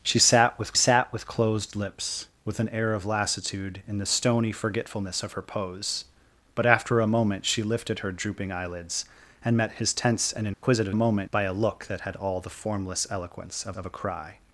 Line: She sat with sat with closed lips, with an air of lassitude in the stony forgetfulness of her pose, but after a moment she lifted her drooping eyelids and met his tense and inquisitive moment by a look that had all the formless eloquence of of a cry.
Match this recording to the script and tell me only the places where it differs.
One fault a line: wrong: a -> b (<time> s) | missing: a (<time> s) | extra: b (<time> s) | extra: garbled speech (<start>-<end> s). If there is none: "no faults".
no faults